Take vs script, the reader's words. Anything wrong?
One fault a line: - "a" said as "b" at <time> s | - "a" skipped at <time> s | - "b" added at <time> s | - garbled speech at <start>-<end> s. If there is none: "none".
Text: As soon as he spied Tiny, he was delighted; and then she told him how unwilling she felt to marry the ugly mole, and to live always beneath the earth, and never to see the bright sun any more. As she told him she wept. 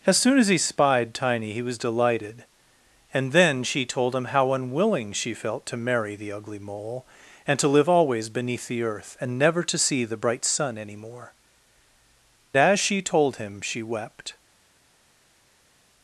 none